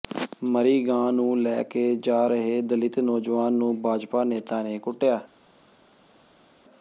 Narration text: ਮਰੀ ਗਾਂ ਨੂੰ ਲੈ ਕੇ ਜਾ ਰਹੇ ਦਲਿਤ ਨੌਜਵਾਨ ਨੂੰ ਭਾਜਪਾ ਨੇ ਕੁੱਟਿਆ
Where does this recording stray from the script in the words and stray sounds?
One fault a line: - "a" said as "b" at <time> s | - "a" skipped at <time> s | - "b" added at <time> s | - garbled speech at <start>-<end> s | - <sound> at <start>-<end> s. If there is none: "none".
- "ਨੇਤਾ" added at 4.2 s